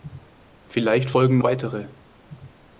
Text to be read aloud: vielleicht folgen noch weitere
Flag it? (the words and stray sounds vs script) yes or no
yes